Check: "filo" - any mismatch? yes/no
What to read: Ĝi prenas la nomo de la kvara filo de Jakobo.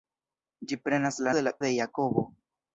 yes